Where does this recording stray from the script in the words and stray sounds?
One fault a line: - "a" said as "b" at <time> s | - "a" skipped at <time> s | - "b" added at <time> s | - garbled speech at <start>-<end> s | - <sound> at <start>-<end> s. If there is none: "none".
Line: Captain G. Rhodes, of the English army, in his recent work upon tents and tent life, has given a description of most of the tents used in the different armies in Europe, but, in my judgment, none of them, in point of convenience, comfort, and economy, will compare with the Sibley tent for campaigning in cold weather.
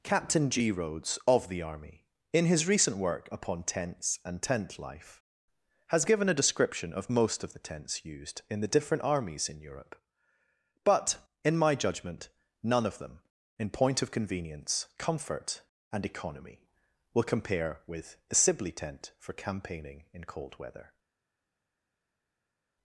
- "English" skipped at 1.6 s